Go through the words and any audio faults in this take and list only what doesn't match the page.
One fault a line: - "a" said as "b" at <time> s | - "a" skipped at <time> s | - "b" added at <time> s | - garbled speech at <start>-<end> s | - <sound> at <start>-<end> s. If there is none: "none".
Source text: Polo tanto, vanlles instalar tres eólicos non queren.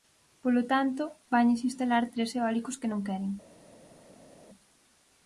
- "que" added at 2.8 s